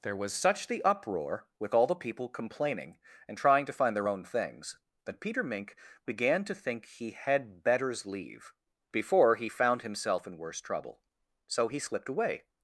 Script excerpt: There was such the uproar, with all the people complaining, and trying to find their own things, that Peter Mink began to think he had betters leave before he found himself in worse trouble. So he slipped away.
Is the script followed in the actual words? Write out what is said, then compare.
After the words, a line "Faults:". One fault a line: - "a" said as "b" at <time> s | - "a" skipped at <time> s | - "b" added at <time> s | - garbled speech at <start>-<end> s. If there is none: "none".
There was such the uproar, with all the people complaining, and trying to find their own things, that Peter Mink began to think he had betters leave before he found himself in worse trouble. So he slipped away.
Faults:
none